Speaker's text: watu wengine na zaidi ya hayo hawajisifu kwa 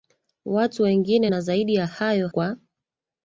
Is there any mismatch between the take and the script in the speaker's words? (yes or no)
yes